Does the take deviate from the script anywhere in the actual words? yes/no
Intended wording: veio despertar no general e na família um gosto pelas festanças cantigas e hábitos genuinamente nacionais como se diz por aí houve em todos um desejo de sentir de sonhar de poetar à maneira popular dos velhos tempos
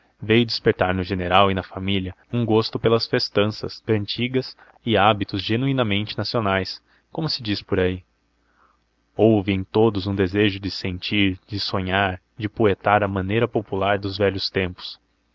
no